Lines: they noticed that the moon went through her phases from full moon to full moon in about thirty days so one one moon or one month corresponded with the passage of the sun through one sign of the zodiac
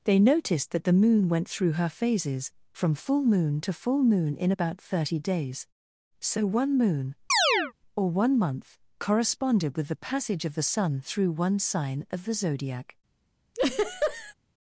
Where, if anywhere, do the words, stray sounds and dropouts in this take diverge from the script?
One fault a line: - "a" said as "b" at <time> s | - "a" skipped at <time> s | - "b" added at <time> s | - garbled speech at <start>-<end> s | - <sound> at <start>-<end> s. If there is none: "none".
- "one" skipped at 6.8 s
- chirp at 7.3-7.7 s
- laugh at 13.5-14.3 s